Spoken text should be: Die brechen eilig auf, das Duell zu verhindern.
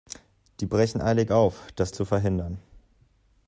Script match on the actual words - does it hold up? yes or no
no